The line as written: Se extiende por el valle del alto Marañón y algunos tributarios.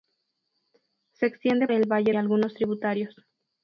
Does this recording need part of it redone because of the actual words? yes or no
yes